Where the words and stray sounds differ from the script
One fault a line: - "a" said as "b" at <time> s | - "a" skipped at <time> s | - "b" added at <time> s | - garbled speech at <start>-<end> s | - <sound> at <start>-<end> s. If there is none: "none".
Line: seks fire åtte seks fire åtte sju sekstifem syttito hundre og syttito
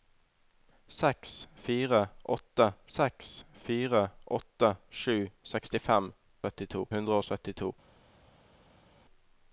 none